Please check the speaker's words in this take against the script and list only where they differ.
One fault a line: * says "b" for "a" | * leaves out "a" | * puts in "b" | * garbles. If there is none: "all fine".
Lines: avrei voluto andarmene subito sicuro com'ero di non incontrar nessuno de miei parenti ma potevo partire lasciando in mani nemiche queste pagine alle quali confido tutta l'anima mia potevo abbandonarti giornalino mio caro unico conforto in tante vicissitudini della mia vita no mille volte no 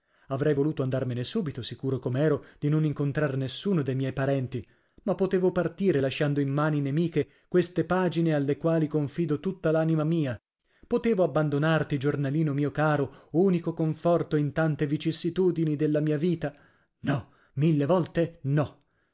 all fine